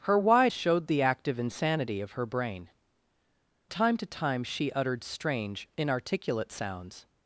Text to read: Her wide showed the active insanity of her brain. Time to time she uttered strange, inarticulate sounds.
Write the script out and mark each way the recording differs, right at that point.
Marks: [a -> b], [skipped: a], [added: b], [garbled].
Her wide showed the active insanity of her brain. Time to time she uttered strange, inarticulate sounds.